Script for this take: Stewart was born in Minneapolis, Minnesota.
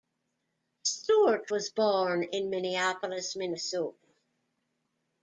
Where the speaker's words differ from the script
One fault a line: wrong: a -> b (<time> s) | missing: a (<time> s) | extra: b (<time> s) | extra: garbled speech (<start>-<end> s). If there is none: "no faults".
no faults